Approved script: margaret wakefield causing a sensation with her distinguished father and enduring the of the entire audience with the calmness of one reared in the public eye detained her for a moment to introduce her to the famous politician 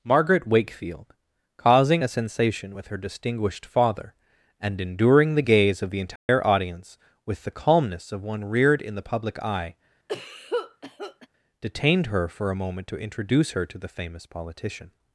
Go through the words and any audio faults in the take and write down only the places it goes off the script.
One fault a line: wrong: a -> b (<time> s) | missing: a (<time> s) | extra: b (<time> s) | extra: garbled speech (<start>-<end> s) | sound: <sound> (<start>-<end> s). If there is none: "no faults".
extra: gaze (5.4 s)
sound: dropout (6.2-6.3 s)
sound: cough (10.1-11.3 s)